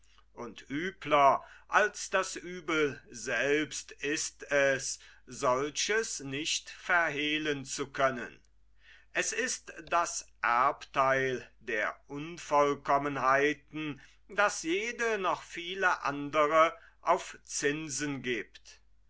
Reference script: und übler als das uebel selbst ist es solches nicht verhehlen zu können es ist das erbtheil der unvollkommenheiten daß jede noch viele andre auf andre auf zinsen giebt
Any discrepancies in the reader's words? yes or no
yes